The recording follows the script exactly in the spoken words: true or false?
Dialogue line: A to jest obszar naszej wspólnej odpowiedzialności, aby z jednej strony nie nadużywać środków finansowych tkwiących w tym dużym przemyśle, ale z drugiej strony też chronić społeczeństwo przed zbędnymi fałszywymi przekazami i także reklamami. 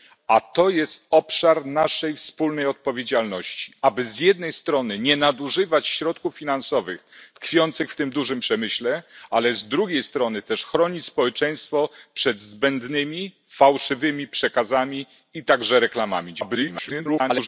false